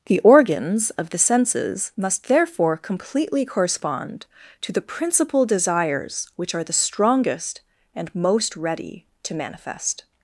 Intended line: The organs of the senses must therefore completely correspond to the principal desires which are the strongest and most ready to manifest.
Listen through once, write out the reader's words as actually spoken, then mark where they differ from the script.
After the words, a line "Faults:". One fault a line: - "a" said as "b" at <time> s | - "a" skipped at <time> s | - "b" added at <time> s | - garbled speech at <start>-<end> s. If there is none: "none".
The organs of the senses must therefore completely correspond to the principal desires which are the strongest and most ready to manifest.
Faults:
none